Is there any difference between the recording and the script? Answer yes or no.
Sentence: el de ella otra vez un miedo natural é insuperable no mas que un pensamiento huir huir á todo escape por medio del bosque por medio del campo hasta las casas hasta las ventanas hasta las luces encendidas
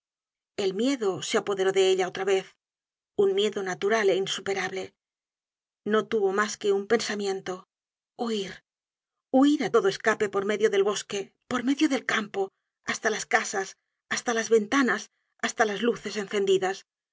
yes